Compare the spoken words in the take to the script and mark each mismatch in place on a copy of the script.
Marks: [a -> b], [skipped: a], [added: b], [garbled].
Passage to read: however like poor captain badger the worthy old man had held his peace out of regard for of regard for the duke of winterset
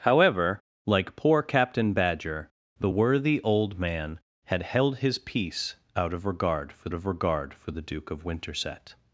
however like poor captain badger the worthy old man had held his peace out of regard for of regard for the duke of winterset